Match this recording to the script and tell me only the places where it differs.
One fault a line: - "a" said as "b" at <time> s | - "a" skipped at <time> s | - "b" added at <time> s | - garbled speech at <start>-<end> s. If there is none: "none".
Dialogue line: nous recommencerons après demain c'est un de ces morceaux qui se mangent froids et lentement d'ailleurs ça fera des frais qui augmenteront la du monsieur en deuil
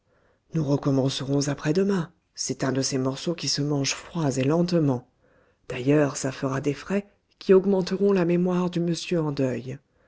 - "mémoire" added at 8.2 s